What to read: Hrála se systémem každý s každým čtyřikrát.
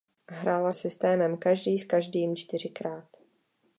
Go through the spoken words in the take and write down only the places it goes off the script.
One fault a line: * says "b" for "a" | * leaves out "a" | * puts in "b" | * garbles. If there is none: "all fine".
* leaves out "se"